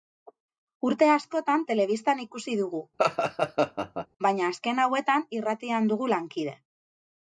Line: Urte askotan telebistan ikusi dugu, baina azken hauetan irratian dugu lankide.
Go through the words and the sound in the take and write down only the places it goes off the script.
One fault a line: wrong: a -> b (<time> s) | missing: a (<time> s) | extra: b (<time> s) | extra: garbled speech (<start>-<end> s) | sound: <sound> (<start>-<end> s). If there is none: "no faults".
sound: laugh (3.0-4.1 s)